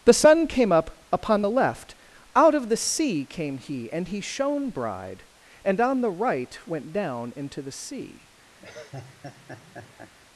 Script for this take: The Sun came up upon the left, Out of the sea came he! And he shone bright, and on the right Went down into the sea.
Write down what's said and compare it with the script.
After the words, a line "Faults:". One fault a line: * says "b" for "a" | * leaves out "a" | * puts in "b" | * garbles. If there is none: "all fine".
The Sun came up upon the left, Out of the sea came he! And he shone bride, and on the right Went down into the sea.
Faults:
* says "bride" for "bright"